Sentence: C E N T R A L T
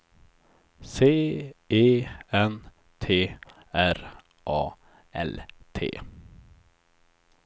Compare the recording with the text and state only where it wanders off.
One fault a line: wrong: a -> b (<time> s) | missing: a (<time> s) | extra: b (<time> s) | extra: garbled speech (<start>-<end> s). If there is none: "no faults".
no faults